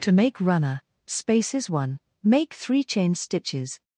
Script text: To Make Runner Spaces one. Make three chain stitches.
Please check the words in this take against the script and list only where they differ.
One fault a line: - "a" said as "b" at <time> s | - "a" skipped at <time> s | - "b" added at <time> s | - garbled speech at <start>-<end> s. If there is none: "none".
none